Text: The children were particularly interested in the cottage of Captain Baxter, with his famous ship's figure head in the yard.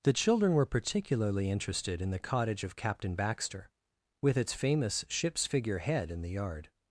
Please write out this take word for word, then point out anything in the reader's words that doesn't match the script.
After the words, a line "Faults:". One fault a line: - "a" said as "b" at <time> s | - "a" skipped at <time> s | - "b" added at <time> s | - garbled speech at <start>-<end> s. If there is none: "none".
The children were particularly interested in the cottage of Captain Baxter, with its famous ship's figure head in the yard.
Faults:
- "his" said as "its" at 4.3 s